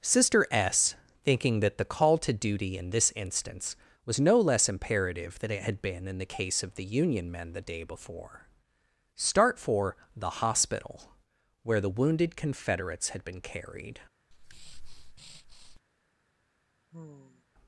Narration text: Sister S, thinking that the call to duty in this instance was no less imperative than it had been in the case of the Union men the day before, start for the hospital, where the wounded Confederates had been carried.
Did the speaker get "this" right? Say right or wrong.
right